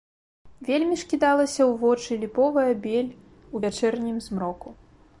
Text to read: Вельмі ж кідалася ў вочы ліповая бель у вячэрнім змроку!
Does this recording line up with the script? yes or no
yes